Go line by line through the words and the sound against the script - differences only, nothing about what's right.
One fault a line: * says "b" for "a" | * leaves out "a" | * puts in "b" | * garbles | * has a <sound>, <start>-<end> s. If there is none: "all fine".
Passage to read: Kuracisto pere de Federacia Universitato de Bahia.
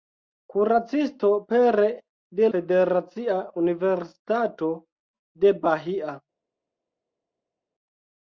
all fine